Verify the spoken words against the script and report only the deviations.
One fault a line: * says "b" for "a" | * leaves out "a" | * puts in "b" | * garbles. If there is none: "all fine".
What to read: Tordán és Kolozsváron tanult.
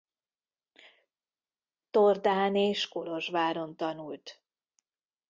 all fine